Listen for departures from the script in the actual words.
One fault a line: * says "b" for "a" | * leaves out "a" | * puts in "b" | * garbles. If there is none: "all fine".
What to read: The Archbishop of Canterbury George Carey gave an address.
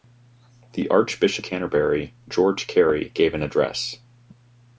* leaves out "of"